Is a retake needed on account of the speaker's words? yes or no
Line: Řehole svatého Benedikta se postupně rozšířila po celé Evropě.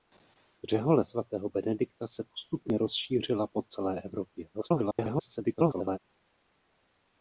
yes